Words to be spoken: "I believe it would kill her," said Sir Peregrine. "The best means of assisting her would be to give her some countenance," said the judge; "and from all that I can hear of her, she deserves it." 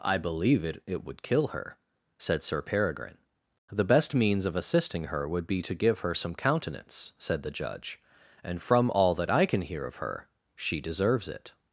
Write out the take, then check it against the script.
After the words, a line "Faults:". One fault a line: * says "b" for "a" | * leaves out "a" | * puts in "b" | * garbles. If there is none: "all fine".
"I believe it it would kill her," said Sir Peregrine. "The best means of assisting her would be to give her some countenance," said the judge; "and from all that I can hear of her, she deserves it."
Faults:
* puts in "it"